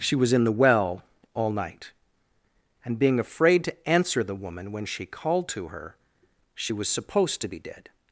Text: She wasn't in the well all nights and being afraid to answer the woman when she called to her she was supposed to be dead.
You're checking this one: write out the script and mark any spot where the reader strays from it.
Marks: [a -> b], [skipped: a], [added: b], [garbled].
She [wasn't -> was] in the well all [nights -> night] and being afraid to answer the woman when she called to her she was supposed to be dead.